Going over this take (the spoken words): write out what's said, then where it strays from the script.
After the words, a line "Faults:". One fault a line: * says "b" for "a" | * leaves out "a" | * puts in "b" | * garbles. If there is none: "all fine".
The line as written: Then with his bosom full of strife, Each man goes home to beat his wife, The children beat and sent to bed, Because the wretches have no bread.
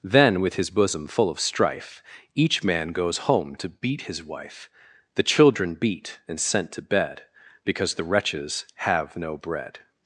Then with his bosom full of strife, Each man goes home to beat his wife, The children beat and sent to bed, Because the wretches have no bread.
Faults:
all fine